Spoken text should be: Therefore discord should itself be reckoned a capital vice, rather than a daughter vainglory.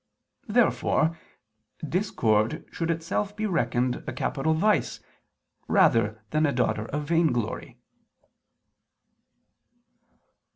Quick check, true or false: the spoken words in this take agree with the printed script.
false